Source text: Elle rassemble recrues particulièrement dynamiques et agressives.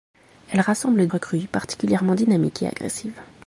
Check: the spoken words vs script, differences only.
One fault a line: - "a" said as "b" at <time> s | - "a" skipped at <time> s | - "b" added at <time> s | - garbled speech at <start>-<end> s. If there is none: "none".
none